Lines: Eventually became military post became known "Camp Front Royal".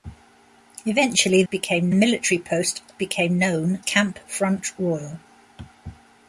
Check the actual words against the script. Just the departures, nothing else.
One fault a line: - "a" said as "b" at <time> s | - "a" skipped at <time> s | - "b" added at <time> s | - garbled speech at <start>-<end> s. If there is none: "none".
none